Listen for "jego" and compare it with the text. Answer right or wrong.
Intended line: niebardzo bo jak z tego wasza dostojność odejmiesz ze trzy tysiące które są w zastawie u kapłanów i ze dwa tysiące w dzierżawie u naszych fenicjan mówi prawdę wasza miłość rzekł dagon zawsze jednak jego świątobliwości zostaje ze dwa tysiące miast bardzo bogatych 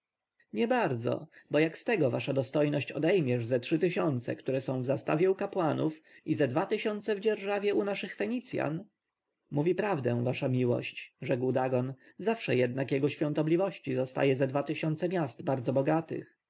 right